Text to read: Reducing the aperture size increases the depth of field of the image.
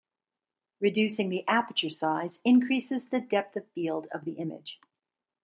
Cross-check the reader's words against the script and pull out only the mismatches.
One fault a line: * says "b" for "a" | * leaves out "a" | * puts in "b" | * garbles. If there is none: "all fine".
all fine